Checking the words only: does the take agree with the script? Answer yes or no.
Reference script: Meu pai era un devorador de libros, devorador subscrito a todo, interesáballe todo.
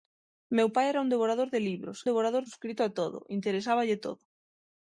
yes